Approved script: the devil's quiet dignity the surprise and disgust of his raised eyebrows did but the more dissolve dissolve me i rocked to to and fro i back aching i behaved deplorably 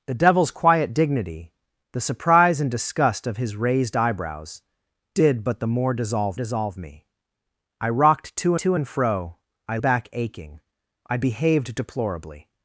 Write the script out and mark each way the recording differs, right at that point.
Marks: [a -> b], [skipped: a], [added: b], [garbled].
the devil's quiet dignity the surprise and disgust of his raised eyebrows did but the more dissolve dissolve me i rocked to to and fro i back aching i behaved deplorably